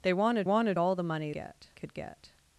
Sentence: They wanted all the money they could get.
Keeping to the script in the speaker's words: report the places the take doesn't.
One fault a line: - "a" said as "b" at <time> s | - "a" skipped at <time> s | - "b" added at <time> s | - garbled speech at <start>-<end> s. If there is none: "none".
- "wanted" added at 0.4 s
- "they" said as "get" at 1.3 s